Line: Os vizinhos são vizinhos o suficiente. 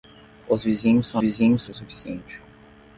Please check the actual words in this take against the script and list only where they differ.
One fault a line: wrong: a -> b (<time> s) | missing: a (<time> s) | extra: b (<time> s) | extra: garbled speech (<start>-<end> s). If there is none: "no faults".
no faults